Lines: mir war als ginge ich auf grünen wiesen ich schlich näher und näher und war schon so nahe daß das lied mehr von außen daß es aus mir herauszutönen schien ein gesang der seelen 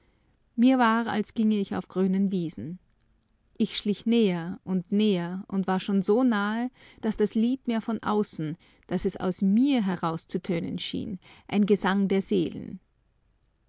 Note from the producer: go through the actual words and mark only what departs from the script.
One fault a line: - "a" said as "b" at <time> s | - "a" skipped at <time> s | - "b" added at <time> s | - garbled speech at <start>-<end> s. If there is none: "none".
none